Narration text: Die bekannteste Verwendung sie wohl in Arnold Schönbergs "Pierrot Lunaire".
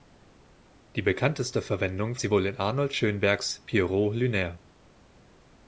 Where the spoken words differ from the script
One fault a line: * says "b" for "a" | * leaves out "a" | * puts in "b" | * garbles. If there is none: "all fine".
all fine